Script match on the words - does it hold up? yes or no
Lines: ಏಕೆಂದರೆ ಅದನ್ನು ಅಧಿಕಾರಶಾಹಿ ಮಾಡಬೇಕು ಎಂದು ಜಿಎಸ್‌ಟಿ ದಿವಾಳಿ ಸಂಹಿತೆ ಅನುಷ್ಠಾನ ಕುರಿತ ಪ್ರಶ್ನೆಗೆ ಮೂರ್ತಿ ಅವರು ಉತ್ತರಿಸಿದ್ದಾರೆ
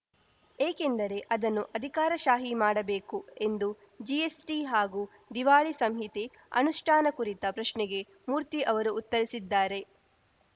no